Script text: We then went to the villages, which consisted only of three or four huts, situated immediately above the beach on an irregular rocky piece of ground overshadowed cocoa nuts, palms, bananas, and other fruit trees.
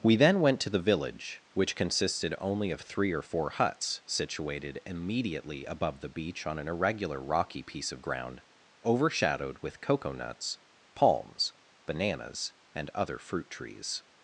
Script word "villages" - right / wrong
wrong